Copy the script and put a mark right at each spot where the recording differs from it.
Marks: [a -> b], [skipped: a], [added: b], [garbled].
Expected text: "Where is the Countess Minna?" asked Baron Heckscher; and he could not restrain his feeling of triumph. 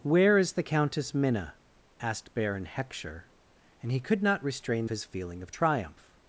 "Where is the Countess Minna?" asked Baron Heckscher; and he could not restrain his feeling of triumph.